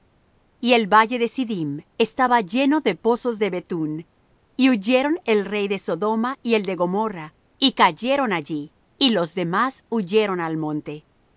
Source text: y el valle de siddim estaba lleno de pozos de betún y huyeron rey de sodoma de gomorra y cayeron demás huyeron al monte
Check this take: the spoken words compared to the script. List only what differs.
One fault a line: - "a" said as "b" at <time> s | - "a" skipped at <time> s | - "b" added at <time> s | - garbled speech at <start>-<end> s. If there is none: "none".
- "el" added at 5.3 s
- "y el" added at 6.4 s
- "allí y los" added at 8.3 s